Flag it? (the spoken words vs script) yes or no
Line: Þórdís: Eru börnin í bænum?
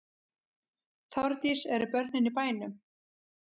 no